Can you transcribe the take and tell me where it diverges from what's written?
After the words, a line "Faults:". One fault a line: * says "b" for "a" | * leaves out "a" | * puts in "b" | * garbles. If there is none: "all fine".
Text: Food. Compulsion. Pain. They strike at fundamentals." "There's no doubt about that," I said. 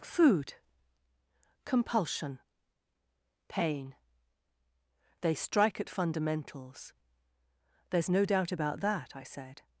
Food. Compulsion. Pain. They strike at fundamentals." "There's no doubt about that," I said.
Faults:
all fine